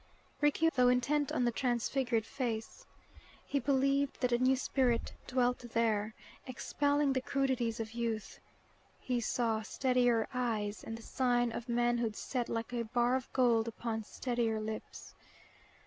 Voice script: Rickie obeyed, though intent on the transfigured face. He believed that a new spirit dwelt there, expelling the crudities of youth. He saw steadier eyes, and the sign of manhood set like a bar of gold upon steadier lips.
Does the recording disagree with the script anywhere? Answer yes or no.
yes